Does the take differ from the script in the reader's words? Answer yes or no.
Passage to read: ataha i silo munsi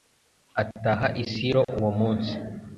yes